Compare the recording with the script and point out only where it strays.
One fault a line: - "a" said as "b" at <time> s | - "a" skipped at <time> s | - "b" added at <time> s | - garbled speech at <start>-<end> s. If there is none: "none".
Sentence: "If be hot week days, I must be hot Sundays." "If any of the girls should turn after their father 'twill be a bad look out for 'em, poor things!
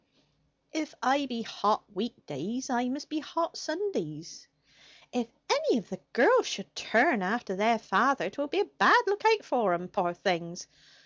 - "I" added at 1.0 s